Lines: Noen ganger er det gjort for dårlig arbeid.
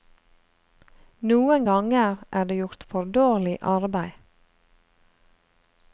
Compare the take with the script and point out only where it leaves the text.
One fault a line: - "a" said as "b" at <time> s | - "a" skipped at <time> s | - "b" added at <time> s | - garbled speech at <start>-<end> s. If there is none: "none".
none